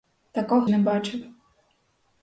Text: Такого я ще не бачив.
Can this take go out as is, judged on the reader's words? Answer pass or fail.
fail